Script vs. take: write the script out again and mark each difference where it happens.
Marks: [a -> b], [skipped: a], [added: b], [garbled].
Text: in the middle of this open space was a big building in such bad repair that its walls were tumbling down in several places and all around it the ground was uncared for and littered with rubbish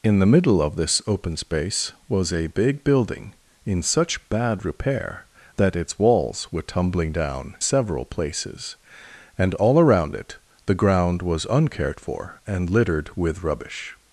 in the middle of this open space was a big building in such bad repair that its walls were tumbling down [skipped: in] several places and all around it the ground was uncared for and littered with rubbish